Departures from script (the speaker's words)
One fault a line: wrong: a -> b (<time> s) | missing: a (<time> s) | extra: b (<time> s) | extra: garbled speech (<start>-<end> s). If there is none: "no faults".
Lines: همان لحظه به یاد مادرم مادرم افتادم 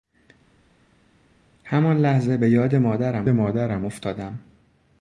no faults